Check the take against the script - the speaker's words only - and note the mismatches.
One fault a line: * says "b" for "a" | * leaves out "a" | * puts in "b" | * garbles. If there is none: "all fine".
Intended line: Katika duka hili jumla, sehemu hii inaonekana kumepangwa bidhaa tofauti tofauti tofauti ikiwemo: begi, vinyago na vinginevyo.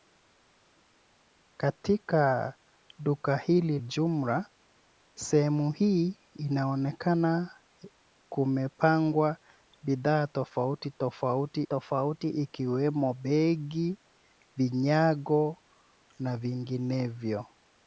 all fine